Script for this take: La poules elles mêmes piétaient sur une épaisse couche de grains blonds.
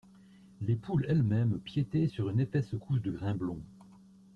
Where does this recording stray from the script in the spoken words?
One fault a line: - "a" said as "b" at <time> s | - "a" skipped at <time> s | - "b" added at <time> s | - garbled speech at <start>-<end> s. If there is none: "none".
- "La" said as "Les" at 0.6 s